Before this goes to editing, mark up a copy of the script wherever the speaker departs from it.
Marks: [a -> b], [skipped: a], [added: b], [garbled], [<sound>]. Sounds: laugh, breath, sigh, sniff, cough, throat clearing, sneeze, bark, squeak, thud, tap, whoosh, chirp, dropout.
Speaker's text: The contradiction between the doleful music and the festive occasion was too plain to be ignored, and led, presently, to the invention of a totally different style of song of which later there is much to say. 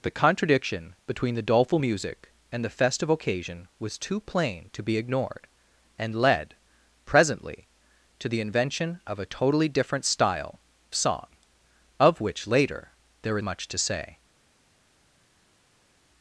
The contradiction between the doleful music and the festive occasion was too plain to be ignored, and led, presently, to the invention of a totally different style [skipped: of] song of which later there [skipped: is] much to say.